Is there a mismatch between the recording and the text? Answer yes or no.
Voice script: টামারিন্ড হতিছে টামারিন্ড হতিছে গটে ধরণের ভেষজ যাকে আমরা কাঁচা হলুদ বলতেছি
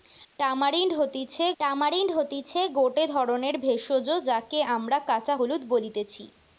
no